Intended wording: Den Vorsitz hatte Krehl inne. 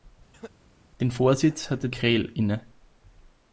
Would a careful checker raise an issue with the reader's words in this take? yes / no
no